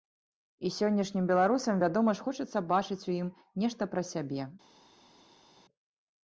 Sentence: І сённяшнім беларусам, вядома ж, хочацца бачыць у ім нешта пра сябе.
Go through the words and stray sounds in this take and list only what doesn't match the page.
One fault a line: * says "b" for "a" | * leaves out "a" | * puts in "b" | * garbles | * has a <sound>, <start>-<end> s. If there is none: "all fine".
all fine